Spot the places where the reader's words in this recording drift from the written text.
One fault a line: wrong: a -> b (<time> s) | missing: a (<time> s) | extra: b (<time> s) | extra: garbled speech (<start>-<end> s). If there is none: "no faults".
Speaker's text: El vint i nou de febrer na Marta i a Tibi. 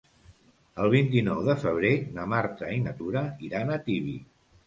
extra: na Tura iran (2.8 s)